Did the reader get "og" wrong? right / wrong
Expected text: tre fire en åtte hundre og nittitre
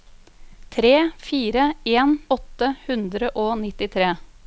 right